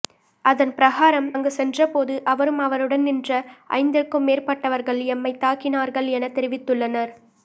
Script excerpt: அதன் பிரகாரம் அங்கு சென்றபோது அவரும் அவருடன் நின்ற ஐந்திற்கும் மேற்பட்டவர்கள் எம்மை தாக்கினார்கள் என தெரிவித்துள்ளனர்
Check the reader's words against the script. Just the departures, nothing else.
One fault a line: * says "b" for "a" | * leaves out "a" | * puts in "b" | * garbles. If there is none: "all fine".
all fine